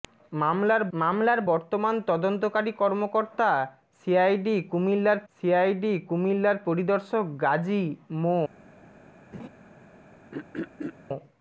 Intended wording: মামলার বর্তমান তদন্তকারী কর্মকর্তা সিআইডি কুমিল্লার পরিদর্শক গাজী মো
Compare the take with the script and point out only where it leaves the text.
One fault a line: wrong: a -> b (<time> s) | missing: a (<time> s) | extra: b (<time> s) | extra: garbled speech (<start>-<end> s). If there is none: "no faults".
extra: মামলার (0.9 s)
extra: সিআইডি কুমিল্লার (5.3 s)